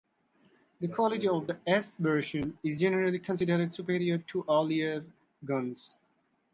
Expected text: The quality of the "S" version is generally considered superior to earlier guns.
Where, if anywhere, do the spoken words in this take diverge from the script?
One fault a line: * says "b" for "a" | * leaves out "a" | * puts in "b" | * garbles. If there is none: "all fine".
all fine